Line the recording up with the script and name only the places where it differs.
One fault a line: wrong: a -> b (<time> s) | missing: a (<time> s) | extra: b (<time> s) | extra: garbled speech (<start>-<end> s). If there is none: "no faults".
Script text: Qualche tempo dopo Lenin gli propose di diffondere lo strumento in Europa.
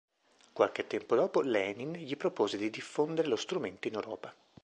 no faults